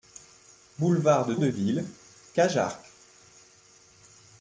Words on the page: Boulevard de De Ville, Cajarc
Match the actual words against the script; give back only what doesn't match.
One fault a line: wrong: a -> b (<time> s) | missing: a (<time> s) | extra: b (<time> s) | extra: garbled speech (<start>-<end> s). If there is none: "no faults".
no faults